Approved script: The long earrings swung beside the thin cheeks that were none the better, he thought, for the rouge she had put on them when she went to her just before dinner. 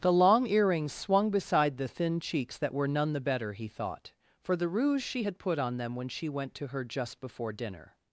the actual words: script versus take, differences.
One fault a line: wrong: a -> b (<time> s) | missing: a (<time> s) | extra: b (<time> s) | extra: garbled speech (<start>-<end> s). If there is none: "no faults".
no faults